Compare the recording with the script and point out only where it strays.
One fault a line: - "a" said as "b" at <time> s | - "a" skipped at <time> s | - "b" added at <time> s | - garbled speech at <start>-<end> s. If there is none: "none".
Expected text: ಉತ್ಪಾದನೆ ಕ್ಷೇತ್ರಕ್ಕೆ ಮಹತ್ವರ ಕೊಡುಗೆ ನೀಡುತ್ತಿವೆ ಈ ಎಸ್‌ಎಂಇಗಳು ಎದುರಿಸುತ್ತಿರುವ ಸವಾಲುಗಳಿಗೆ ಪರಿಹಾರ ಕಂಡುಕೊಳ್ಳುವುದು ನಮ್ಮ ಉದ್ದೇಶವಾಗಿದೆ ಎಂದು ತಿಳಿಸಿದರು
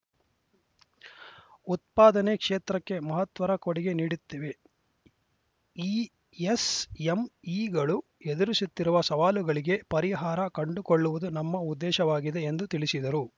none